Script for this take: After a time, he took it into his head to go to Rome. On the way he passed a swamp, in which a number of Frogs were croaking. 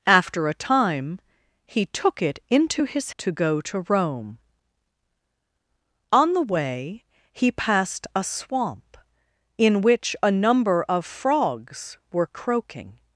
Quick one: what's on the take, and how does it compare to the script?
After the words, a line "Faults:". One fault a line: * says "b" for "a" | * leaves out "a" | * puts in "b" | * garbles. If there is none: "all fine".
After a time, he took it into his to go to Rome. On the way he passed a swamp, in which a number of Frogs were croaking.
Faults:
* leaves out "head"